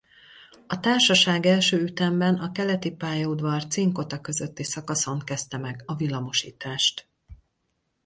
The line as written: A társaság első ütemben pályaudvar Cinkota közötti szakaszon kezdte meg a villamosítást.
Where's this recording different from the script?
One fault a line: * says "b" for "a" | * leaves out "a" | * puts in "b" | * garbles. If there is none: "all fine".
* puts in "a Keleti"